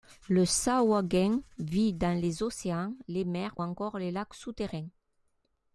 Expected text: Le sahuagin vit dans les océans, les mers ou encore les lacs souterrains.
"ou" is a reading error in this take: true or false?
true